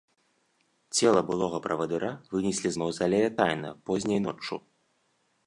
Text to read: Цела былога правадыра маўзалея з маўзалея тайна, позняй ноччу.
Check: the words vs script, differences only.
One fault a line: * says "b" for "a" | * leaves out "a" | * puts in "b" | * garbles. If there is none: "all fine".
* says "вынеслі" for "маўзалея"